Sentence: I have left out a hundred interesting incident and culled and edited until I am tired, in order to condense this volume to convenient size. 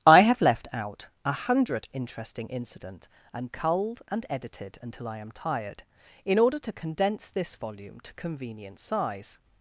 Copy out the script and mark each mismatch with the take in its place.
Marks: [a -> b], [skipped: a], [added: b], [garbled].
I have left out a hundred interesting incident and culled and edited until I am tired, in order to condense this volume to convenient size.